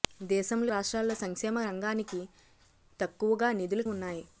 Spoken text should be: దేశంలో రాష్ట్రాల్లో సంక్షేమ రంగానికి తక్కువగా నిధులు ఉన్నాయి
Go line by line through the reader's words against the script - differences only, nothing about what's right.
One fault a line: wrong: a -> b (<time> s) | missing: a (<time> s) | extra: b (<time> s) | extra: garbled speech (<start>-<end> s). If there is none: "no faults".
no faults